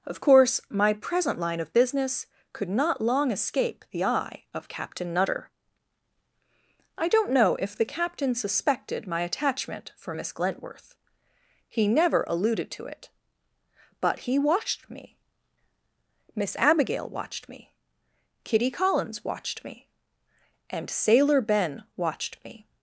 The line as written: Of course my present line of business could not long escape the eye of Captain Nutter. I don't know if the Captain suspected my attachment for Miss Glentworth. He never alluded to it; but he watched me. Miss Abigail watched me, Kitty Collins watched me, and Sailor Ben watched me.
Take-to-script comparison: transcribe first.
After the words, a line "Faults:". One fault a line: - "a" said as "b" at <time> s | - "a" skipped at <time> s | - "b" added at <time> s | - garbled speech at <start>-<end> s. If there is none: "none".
Of course my present line of business could not long escape the eye of Captain Nutter. I don't know if the Captain suspected my attachment for Miss Glentworth. He never alluded to it; but he watched me. Miss Abigail watched me, Kitty Collins watched me, and Sailor Ben watched me.
Faults:
none